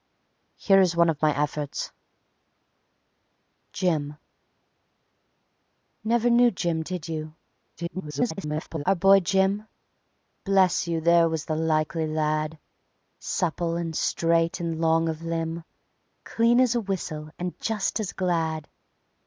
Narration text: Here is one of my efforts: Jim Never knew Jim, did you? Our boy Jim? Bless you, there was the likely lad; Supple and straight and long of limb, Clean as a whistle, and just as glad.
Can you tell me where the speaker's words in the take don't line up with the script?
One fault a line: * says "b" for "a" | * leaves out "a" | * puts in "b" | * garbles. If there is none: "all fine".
* garbles